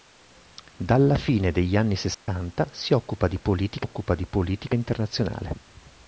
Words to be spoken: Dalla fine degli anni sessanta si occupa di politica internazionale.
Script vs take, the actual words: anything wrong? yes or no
yes